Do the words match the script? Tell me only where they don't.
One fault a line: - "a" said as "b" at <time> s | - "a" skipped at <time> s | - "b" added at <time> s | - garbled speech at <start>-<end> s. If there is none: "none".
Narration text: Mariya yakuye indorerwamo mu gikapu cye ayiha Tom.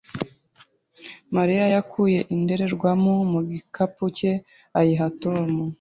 none